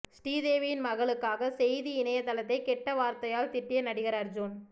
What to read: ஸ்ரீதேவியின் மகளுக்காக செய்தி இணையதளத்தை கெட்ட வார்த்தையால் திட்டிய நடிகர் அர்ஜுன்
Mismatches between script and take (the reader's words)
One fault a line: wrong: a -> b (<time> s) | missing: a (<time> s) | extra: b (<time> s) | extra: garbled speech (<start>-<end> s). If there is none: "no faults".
no faults